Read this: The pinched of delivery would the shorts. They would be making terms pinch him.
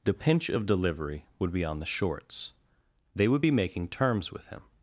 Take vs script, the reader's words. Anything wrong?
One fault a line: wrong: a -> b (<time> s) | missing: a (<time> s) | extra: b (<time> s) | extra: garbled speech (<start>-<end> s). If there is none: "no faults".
wrong: pinched -> pinch (0.1 s)
extra: be on (1.5 s)
wrong: pinch -> with (4.3 s)